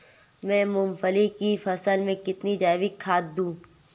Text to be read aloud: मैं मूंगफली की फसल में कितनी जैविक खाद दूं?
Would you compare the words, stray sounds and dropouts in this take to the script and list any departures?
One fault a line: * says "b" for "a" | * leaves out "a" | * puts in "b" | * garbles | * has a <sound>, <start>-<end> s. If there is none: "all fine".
all fine